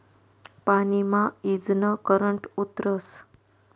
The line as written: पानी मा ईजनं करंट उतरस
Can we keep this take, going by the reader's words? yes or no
yes